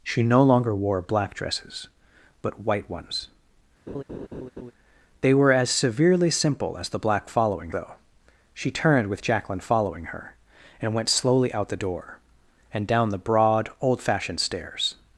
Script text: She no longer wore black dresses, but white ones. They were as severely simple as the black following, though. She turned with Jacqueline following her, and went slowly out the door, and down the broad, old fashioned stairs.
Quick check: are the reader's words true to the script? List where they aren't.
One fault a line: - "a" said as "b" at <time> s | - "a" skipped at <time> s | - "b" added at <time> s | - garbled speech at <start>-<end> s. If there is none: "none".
none